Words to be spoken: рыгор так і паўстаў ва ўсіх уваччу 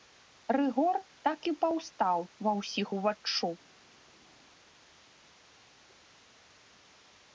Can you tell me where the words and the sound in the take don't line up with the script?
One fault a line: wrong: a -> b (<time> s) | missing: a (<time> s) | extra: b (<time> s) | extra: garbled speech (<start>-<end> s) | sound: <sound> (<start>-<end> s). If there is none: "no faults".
no faults